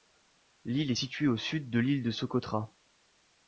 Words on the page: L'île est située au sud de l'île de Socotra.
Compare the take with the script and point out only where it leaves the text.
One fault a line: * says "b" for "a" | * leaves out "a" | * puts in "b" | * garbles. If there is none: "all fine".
all fine